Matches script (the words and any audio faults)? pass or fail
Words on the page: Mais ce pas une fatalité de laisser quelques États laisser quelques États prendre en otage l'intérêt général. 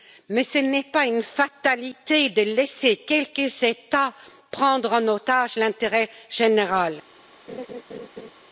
fail